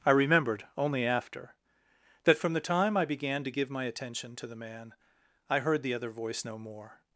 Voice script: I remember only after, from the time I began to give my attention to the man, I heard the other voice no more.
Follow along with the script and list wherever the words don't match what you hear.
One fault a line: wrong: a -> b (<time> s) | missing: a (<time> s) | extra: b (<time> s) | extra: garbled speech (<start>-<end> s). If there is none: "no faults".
wrong: remember -> remembered (0.1 s)
extra: that (2.2 s)